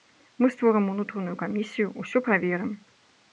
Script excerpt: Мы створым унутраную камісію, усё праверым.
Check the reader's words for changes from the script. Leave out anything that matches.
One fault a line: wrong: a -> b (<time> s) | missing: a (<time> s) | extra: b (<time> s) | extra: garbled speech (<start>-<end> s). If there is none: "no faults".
no faults